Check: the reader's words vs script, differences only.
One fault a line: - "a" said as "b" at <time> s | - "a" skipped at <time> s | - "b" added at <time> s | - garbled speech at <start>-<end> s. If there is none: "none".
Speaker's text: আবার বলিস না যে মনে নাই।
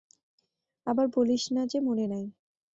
none